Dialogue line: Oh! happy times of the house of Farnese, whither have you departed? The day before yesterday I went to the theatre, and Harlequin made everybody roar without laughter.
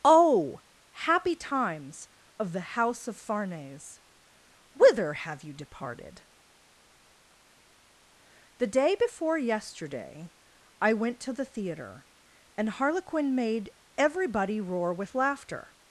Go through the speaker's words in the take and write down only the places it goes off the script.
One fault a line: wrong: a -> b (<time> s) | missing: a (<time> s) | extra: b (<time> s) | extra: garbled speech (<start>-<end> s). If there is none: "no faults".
wrong: without -> with (14.9 s)